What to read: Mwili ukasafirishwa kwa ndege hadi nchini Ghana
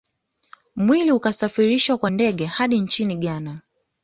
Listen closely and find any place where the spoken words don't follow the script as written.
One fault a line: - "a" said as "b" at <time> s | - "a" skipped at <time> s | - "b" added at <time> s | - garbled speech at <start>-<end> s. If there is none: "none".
none